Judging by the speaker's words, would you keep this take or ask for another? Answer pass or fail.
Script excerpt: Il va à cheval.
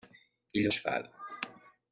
fail